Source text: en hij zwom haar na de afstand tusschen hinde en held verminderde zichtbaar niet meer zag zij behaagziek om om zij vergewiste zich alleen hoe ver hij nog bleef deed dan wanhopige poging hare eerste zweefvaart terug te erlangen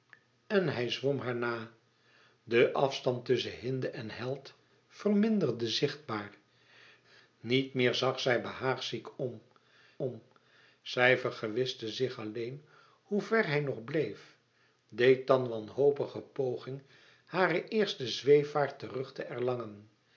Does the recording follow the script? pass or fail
pass